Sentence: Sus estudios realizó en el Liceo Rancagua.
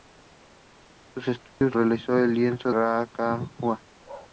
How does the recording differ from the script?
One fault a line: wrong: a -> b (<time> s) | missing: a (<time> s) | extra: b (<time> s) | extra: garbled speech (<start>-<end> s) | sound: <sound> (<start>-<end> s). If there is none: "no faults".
sound: dropout (1.5-1.6 s)
sound: bark (4.0-4.3 s)